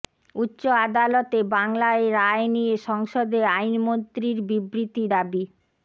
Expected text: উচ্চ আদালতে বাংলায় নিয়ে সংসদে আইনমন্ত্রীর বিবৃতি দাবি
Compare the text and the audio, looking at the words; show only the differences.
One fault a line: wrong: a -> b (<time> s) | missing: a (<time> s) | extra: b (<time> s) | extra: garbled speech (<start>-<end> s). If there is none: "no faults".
extra: রায় (2.1 s)